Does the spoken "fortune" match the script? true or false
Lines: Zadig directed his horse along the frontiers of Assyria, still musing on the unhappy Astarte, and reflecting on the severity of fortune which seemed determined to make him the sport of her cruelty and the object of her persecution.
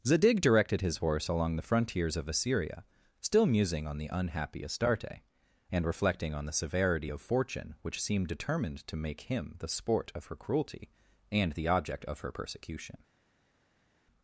true